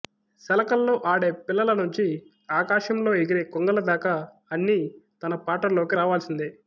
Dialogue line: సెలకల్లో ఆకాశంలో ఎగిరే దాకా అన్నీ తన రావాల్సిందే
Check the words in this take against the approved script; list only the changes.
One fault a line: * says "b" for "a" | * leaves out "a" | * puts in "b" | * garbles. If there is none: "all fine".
* puts in "ఆడే పిల్లల నుంచి"
* puts in "కొంగల"
* puts in "పాటల్లోకి"